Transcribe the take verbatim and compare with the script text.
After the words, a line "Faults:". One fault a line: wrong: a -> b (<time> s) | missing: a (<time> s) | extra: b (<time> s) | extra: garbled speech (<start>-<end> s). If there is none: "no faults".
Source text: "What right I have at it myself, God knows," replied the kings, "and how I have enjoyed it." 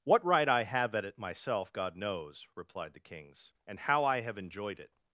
"What right I have at it myself, God knows," replied the kings, "and how I have enjoyed it."
Faults:
no faults